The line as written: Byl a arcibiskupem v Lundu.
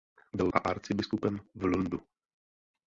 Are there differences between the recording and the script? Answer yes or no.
no